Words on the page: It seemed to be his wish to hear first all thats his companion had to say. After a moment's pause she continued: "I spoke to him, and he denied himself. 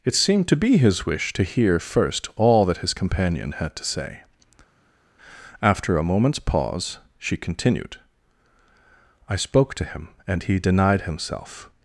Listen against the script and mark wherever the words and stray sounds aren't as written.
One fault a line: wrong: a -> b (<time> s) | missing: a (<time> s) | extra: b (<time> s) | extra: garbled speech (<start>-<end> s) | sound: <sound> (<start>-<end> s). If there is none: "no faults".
wrong: thats -> that (2.6 s)